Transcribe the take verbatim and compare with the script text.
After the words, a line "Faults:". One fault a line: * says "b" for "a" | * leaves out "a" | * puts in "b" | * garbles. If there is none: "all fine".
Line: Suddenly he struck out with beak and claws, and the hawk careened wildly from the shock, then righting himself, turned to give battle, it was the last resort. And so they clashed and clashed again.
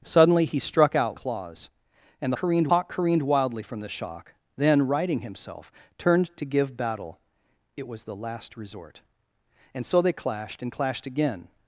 Suddenly he struck out claws, and careened hawk careened wildly from the shock, then righting himself, turned to give battle, it was the last resort. And so they clashed and clashed again.
Faults:
* leaves out "with beak and"
* says "careened" for "the"